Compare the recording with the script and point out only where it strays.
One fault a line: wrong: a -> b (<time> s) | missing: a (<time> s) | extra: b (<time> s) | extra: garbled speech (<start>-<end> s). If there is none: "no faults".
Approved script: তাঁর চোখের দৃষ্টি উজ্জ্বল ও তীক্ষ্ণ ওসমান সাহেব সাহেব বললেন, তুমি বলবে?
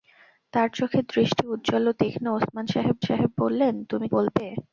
no faults